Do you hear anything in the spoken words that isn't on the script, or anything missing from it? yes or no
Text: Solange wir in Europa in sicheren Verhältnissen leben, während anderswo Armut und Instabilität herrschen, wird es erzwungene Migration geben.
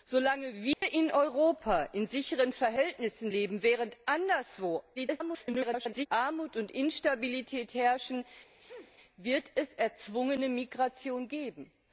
yes